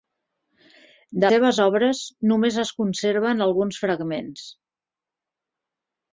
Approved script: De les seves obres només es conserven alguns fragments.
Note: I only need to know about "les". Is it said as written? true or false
false